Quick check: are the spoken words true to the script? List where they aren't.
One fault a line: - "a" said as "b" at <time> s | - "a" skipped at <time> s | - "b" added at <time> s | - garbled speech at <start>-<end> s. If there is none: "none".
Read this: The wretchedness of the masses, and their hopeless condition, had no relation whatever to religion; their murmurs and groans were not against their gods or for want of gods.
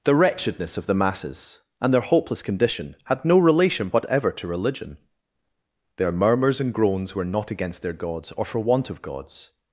none